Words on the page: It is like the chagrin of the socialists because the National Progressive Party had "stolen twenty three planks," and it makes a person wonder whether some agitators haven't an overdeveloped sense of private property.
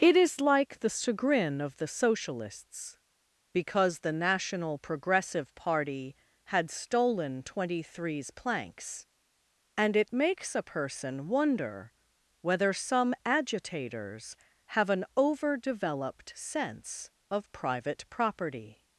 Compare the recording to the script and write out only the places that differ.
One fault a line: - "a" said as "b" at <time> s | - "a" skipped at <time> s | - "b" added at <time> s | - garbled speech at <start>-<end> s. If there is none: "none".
- "three" said as "threes" at 7.8 s
- "haven't" said as "have" at 14.7 s